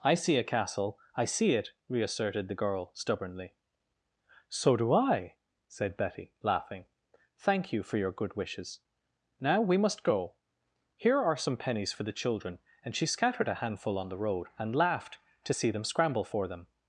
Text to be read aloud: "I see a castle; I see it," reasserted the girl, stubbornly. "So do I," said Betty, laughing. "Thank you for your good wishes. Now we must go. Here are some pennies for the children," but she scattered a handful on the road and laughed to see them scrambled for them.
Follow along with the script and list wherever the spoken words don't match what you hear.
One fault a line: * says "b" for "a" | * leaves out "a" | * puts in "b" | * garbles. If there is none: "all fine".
* says "and" for "but"
* says "scramble" for "scrambled"